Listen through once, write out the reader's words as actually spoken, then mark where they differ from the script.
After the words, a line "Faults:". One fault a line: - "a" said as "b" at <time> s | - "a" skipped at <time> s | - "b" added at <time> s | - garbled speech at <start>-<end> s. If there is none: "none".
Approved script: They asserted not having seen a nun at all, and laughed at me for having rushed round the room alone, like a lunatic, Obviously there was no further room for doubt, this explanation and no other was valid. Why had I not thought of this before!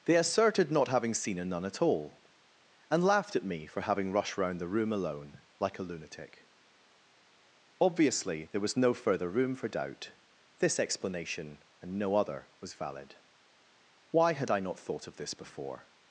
They asserted not having seen a nun at all, and laughed at me for having rushed round the room alone, like a lunatic, Obviously there was no further room for doubt, this explanation and no other was valid. Why had I not thought of this before!
Faults:
none